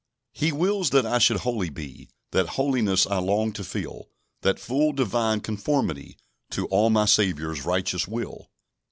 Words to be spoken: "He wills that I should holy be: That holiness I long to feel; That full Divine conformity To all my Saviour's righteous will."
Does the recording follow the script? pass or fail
pass